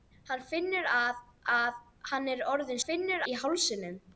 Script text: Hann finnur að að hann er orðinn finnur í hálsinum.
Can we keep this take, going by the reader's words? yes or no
yes